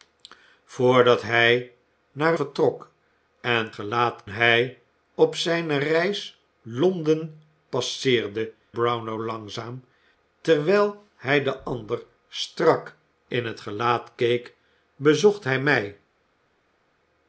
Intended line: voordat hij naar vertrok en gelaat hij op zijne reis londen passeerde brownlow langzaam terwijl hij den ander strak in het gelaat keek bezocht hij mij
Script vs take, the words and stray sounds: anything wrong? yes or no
no